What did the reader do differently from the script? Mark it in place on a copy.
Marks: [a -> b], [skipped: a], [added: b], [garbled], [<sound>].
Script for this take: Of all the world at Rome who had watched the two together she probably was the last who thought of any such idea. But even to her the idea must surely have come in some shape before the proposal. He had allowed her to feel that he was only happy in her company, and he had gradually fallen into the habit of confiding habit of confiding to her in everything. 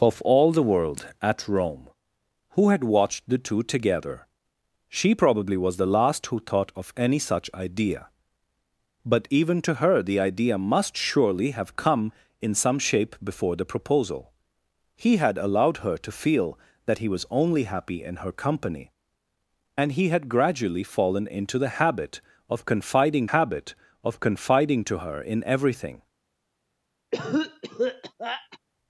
Of all the world at Rome who had watched the two together she probably was the last who thought of any such idea. But even to her the idea must surely have come in some shape before the proposal. He had allowed her to feel that he was only happy in her company, and he had gradually fallen into the habit of confiding habit of confiding to her in everything. [cough]